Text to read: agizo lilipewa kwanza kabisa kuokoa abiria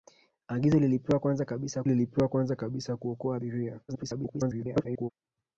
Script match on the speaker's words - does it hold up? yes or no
no